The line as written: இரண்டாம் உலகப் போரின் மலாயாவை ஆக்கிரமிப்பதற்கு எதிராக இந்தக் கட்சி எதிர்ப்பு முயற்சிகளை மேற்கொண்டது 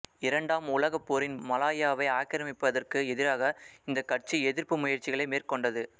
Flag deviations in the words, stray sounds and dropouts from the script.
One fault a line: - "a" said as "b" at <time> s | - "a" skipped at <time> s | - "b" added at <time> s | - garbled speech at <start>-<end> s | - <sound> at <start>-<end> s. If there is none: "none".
none